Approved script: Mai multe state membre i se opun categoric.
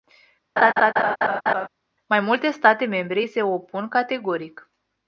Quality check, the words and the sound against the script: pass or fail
fail